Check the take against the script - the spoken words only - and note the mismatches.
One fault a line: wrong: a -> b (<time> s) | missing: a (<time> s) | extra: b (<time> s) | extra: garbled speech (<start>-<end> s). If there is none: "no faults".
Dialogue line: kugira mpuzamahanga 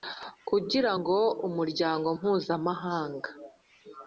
extra: ngo umuryango (1.0 s)